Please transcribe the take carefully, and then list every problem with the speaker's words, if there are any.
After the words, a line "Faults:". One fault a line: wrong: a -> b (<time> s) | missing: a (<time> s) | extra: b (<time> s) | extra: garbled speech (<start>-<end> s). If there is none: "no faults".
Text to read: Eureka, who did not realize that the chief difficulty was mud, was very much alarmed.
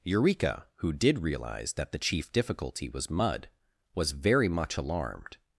Eureka, who did realize that the chief difficulty was mud, was very much alarmed.
Faults:
missing: not (1.2 s)